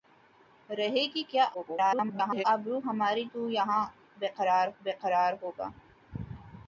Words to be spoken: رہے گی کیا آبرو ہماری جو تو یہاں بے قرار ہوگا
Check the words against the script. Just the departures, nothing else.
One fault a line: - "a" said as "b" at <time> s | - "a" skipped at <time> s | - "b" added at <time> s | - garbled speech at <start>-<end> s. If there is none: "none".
- garbled speech at 1.5-2.4 s
- "جو" skipped at 3.2 s
- "بے قرار" added at 4.8 s